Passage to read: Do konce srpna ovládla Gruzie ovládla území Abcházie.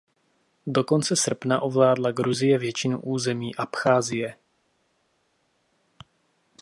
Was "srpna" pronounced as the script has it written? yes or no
yes